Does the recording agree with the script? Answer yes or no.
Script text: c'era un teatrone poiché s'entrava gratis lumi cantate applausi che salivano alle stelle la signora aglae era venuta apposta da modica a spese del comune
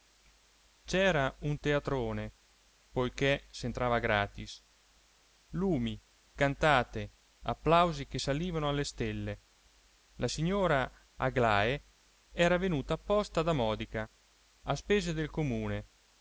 yes